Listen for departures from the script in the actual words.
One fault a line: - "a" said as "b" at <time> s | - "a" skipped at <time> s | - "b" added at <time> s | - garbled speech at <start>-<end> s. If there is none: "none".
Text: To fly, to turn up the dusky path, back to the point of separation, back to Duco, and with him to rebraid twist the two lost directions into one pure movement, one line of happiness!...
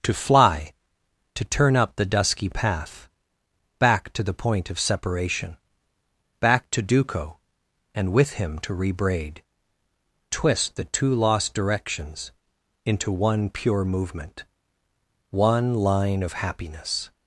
none